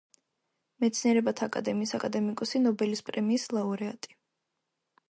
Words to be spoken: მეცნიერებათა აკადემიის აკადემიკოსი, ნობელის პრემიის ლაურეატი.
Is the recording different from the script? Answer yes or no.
no